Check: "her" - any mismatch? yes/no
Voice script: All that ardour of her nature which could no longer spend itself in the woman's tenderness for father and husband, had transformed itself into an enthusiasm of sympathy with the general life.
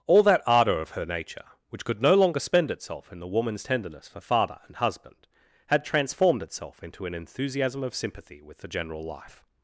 no